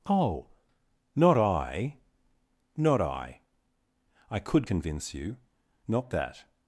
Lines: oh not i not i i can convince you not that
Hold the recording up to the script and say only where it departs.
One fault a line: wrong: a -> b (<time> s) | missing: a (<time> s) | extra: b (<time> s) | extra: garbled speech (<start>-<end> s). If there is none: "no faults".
wrong: can -> could (4.4 s)